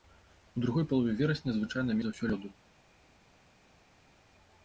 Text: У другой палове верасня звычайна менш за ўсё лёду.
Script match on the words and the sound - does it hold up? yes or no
no